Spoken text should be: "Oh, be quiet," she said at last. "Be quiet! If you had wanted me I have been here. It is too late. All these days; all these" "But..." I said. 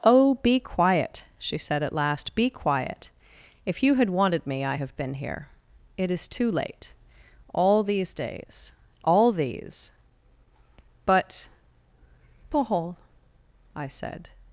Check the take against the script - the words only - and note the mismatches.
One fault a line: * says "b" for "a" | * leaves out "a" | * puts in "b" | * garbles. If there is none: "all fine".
* puts in "paul"